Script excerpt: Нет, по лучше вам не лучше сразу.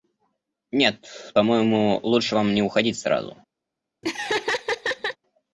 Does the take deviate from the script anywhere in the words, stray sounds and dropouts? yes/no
yes